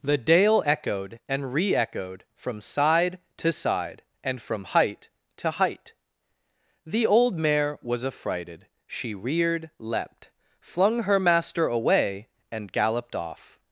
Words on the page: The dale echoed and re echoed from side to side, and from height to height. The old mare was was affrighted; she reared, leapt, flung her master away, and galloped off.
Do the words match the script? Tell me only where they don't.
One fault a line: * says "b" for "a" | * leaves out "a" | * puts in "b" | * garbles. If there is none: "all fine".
* leaves out "was"